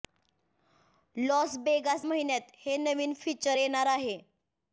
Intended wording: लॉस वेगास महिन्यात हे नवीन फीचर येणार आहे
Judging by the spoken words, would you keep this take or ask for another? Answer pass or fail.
pass